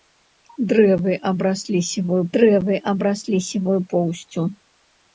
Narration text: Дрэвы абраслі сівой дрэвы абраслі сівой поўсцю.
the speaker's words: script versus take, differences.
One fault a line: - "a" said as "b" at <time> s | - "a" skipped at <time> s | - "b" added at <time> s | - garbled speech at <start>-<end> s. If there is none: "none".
none